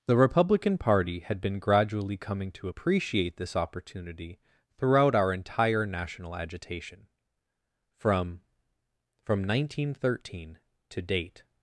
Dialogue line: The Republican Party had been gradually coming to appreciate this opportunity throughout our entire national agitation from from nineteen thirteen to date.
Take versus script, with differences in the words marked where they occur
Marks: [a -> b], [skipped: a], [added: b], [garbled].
The Republican Party had been gradually coming to appreciate this opportunity throughout our entire national agitation from from nineteen thirteen to date.